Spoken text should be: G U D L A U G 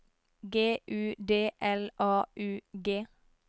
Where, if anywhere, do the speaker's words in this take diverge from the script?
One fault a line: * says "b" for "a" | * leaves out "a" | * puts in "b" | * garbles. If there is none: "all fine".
all fine